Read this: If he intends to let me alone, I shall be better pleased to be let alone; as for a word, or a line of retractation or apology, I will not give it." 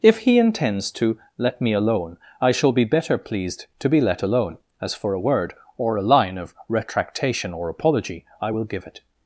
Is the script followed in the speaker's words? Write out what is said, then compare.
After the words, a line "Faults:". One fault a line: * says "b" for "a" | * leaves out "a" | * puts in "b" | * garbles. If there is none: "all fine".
If he intends to let me alone, I shall be better pleased to be let alone; as for a word, or a line of retractation or apology, I will give it."
Faults:
* leaves out "not"